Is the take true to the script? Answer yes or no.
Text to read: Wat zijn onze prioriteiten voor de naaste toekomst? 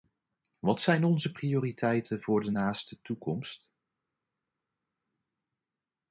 yes